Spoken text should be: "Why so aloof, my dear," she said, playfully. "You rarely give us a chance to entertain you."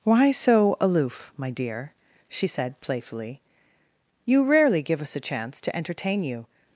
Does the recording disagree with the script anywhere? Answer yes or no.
no